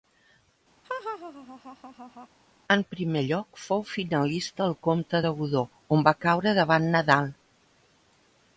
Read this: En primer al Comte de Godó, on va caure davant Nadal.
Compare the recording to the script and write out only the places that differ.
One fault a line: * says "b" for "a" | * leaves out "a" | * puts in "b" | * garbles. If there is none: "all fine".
* puts in "lloc fou finalista"